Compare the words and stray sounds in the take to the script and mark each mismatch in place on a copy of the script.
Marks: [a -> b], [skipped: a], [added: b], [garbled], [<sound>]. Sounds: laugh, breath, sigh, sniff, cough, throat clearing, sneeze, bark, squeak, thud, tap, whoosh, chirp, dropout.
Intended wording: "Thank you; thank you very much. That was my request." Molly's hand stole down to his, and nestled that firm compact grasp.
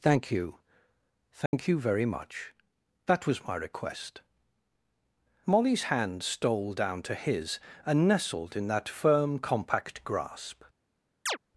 "Thank you; thank [dropout] you very much. That was my request." Molly's hand stole down to his, and nestled [added: in] that firm compact grasp. [chirp]